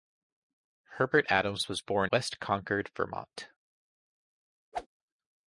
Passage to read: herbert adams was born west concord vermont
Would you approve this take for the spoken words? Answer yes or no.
yes